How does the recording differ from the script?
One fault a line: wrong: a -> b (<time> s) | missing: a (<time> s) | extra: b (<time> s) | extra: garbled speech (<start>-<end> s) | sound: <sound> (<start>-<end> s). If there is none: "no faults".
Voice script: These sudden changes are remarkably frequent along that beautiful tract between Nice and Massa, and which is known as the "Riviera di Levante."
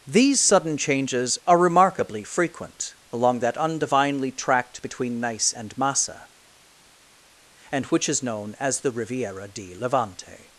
wrong: beautiful -> undivinely (3.6 s)